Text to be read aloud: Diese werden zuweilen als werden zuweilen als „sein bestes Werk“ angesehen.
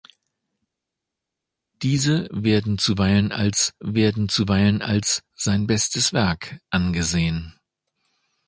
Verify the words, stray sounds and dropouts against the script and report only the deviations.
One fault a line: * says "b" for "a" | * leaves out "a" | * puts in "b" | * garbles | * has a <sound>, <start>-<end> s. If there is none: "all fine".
all fine